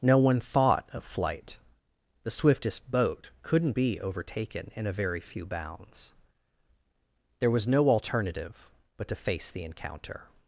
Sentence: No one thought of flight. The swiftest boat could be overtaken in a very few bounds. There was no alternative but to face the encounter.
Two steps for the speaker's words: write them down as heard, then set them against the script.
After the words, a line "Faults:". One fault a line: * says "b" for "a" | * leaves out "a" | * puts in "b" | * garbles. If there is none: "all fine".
No one thought of flight. The swiftest boat couldn't be overtaken in a very few bounds. There was no alternative but to face the encounter.
Faults:
* says "couldn't" for "could"